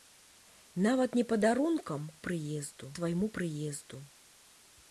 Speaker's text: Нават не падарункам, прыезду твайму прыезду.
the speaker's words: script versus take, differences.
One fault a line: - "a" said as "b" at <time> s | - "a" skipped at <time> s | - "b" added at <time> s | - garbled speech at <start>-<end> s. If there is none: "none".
none